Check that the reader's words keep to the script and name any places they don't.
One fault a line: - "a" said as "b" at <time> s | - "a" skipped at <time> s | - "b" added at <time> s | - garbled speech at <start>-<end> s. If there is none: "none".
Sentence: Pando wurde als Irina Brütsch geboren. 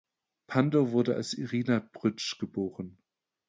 none